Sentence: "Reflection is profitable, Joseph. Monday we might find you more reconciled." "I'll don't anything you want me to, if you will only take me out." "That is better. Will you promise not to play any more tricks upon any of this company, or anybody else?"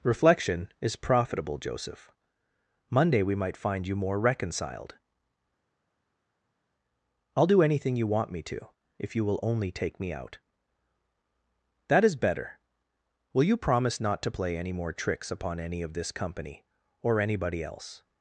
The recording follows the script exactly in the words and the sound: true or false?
false